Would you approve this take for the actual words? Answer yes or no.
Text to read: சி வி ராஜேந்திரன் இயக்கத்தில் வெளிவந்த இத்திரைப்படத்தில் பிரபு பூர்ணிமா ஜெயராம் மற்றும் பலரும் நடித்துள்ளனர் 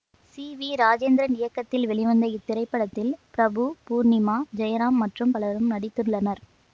yes